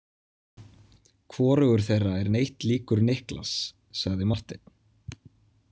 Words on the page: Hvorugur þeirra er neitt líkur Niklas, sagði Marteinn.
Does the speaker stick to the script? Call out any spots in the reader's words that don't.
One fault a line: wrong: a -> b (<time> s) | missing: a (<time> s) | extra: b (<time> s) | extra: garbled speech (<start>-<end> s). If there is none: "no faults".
no faults